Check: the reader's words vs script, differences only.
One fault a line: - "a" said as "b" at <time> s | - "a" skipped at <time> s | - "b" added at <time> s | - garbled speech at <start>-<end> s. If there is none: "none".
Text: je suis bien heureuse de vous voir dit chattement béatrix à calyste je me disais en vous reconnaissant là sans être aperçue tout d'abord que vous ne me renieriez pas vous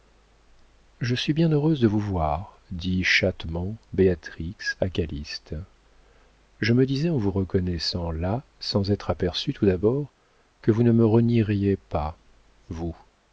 none